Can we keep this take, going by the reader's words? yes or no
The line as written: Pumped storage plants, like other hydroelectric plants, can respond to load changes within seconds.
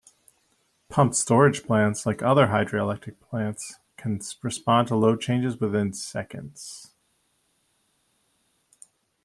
yes